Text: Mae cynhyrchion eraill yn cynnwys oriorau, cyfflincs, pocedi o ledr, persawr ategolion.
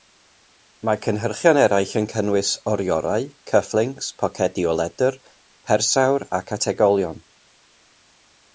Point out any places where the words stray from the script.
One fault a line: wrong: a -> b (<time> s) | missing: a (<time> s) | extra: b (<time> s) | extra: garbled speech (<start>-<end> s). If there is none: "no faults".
extra: ac (6.4 s)